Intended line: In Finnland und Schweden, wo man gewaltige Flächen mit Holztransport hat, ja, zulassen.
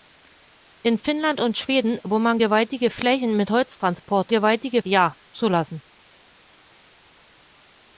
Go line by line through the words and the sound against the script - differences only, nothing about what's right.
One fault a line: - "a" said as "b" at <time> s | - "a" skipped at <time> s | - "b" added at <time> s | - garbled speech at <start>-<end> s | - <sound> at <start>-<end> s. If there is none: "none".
- "hat" said as "gewaltige" at 4.3 s